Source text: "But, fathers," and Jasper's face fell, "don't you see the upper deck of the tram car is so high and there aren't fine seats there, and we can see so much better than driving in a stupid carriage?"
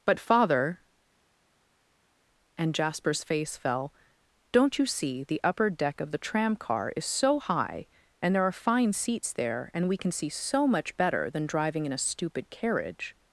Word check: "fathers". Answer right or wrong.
wrong